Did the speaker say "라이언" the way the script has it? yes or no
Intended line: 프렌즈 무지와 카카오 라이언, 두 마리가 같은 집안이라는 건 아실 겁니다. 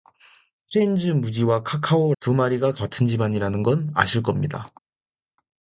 no